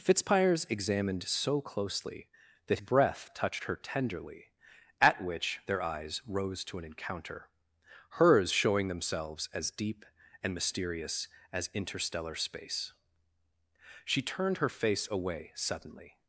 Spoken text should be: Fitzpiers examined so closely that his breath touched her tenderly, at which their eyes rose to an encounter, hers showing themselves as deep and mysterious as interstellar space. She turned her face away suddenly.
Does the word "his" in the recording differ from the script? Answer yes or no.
yes